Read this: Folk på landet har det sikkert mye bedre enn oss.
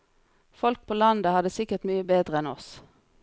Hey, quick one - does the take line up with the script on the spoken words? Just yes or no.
yes